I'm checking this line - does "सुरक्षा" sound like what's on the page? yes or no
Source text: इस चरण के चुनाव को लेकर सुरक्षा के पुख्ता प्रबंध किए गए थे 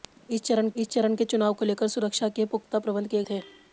yes